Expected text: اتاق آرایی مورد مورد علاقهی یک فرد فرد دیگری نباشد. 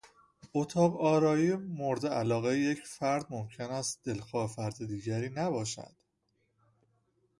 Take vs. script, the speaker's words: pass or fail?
fail